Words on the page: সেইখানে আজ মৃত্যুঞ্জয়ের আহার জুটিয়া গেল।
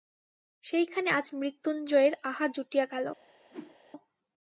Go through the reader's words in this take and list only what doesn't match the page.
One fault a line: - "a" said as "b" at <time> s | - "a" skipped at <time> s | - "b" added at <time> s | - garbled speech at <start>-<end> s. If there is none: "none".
none